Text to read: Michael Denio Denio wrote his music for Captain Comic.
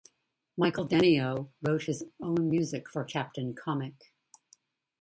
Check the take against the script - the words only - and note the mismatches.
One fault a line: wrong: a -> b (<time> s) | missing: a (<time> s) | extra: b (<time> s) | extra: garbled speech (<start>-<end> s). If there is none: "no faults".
missing: Denio (1.5 s)
extra: own (2.2 s)